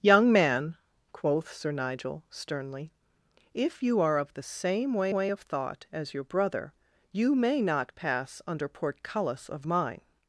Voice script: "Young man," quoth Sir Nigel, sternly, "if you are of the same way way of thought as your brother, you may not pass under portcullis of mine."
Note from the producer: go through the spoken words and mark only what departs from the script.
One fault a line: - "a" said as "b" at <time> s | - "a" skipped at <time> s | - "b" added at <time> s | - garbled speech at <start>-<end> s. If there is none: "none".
none